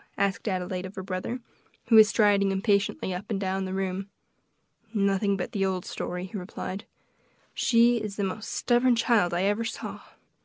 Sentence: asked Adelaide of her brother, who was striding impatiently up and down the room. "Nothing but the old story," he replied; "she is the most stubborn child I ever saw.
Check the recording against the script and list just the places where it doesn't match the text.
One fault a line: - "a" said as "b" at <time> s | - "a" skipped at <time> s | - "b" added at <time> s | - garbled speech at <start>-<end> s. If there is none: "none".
none